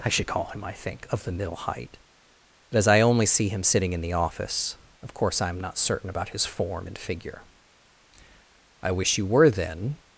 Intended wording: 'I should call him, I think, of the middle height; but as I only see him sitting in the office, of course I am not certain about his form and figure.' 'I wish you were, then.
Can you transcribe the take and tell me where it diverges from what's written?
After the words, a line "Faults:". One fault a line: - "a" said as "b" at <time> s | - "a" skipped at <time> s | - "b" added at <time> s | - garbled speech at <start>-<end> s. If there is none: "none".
'I should call him, I think, of the middle height; but as I only see him sitting in the office, of course I am not certain about his form and figure.' 'I wish you were, then.
Faults:
none